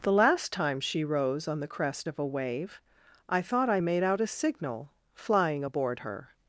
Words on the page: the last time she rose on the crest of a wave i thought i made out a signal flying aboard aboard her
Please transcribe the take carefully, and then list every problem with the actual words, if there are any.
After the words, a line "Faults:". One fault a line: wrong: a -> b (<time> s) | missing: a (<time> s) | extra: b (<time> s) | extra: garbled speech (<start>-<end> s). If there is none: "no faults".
the last time she rose on the crest of a wave i thought i made out a signal flying aboard her
Faults:
missing: aboard (6.0 s)